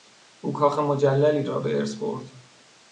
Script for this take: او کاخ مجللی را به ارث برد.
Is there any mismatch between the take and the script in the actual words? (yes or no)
no